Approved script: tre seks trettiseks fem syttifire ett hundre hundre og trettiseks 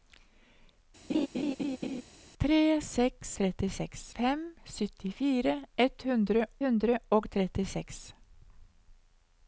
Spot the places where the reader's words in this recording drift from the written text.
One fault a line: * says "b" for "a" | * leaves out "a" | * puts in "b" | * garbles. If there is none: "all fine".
all fine